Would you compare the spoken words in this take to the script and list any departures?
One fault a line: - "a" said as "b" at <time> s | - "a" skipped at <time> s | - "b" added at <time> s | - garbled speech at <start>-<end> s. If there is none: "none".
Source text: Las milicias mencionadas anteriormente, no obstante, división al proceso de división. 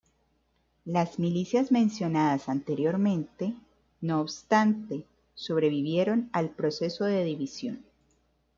- "división" said as "sobrevivieron" at 5.3 s